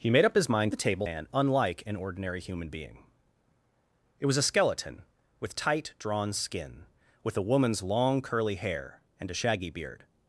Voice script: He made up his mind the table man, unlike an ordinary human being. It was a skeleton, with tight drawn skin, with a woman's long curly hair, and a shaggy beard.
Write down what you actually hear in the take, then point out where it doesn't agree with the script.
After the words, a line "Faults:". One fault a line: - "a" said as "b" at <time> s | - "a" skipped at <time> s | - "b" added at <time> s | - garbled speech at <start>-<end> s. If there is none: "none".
He made up his mind the table man, unlike an ordinary human being. It was a skeleton, with tight drawn skin, with a woman's long curly hair, and a shaggy beard.
Faults:
none